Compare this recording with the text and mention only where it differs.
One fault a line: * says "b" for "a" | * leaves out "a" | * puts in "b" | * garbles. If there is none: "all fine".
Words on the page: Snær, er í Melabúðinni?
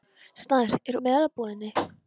all fine